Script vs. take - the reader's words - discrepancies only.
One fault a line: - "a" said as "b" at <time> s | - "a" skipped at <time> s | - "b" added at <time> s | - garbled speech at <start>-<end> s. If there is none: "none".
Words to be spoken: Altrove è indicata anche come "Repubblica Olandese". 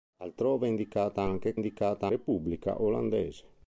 - "come" said as "indicata" at 1.6 s